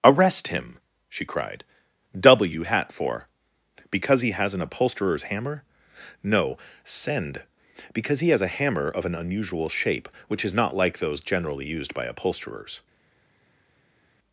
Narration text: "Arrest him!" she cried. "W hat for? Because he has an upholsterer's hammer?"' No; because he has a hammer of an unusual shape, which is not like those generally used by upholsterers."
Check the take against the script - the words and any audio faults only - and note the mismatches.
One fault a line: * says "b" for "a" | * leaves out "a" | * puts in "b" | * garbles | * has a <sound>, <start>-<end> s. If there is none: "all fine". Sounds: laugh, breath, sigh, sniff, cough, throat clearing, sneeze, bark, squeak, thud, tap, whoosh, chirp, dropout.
* puts in "send"